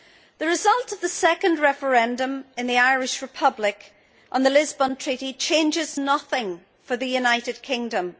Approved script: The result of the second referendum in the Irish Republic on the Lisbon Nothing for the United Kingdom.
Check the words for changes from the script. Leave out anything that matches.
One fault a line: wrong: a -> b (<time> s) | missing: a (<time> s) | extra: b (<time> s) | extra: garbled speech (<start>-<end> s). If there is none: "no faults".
extra: Treaty changes (5.0 s)